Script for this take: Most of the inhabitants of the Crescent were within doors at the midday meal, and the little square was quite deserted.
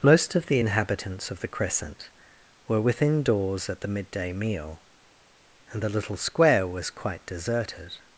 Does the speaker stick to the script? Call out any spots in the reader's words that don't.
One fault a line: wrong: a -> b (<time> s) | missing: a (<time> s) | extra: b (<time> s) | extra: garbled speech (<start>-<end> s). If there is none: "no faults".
no faults